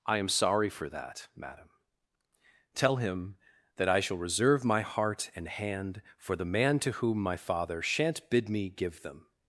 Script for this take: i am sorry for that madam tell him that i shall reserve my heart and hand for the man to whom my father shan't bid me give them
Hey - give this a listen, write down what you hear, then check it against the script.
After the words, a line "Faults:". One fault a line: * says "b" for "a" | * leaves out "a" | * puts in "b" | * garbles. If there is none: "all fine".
i am sorry for that madam tell him that i shall reserve my heart and hand for the man to whom my father shan't bid me give them
Faults:
all fine